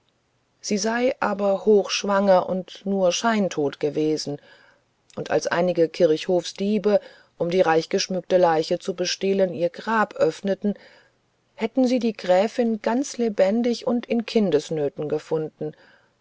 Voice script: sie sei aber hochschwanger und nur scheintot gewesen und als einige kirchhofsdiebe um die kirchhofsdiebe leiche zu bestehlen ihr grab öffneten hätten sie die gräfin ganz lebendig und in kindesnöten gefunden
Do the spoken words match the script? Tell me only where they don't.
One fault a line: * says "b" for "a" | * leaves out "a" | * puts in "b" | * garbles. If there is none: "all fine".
* says "reichgeschmückte" for "kirchhofsdiebe"